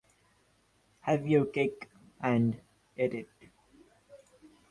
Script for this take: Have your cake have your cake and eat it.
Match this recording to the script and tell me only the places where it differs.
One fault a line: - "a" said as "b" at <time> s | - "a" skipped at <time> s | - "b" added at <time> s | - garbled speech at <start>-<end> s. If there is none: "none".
- "have your cake" skipped at 1.9 s